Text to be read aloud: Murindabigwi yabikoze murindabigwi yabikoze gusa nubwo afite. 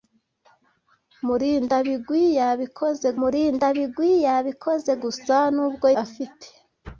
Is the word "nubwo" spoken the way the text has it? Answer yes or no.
yes